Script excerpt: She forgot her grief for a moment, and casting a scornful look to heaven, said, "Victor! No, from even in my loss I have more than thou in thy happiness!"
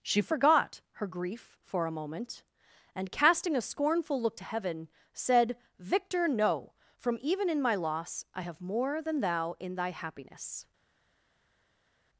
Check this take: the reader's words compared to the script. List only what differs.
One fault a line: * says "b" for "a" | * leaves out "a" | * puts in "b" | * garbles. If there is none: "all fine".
all fine